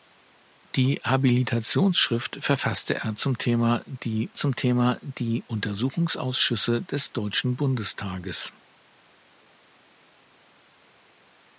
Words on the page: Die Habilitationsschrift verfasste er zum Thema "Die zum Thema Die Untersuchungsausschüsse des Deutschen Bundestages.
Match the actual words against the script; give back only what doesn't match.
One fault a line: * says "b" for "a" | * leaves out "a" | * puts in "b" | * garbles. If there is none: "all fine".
all fine